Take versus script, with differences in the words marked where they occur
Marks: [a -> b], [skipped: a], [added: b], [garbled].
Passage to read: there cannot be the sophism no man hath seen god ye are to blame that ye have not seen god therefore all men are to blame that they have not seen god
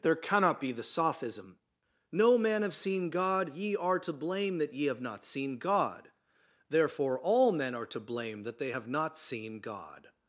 there cannot be the sophism no man [hath -> have] seen god ye are to blame that ye have not seen god therefore all men are to blame that they have not seen god